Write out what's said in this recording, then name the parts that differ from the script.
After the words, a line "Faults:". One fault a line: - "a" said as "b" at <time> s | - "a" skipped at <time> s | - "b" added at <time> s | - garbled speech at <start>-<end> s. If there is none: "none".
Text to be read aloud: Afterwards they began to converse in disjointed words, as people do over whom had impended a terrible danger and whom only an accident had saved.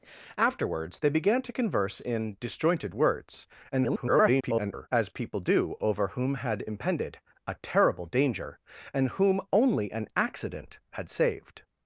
Afterwards they began to converse in disjointed words, [garbled] as people do over whom had impended a terrible danger and whom only an accident had saved.
Faults:
- garbled speech at 3.7-4.9 s